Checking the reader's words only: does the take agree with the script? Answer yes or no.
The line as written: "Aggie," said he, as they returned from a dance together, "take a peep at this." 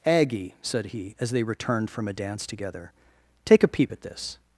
yes